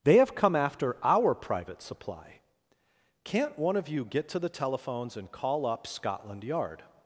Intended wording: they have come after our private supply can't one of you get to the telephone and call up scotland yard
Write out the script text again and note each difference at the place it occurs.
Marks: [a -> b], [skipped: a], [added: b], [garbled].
they have come after our private supply can't one of you get to the [telephone -> telephones] and call up scotland yard